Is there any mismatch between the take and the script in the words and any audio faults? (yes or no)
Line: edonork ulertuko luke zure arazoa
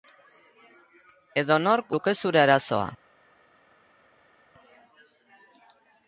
yes